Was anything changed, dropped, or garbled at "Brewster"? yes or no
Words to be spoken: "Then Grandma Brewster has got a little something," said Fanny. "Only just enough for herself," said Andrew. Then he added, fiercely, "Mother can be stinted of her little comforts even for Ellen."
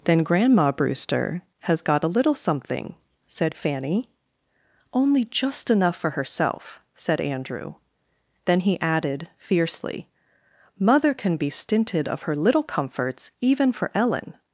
no